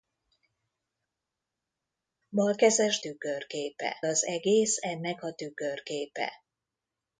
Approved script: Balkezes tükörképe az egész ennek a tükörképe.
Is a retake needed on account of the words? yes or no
no